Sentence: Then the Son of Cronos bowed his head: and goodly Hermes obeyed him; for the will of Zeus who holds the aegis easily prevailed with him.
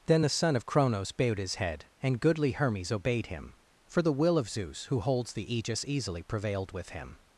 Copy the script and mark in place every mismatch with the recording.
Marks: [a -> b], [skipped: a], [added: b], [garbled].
Then the Son of Cronos bowed his head: and goodly Hermes obeyed him; for the will of Zeus who holds the aegis easily prevailed with him.